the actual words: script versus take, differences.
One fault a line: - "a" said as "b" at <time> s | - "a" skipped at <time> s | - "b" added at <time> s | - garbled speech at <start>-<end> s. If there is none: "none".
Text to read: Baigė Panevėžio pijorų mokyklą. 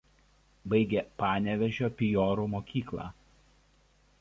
none